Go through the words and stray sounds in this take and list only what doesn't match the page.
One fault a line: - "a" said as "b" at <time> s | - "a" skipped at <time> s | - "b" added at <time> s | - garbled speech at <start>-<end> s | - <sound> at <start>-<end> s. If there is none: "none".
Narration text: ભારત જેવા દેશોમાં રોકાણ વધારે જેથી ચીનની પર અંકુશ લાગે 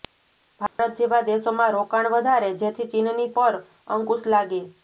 - dropout at 0.7-0.8 s